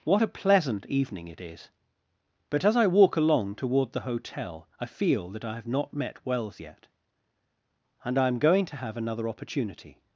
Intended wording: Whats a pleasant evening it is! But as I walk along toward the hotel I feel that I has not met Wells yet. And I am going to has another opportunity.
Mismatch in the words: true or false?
true